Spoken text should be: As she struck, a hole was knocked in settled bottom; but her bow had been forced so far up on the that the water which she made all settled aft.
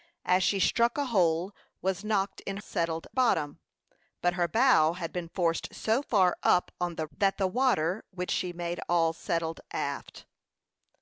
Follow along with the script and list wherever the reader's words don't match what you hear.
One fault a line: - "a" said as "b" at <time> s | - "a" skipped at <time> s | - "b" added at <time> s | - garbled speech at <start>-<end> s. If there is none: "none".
none